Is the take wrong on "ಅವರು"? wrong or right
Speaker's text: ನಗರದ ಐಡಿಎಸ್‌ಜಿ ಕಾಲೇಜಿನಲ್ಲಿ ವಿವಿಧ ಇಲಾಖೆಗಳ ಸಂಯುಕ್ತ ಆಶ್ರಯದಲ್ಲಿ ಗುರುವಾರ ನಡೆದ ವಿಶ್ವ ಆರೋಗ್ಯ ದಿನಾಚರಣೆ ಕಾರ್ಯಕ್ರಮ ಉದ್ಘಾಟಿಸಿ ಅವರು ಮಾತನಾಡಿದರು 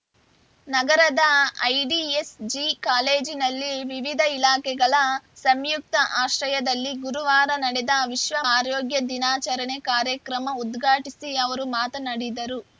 right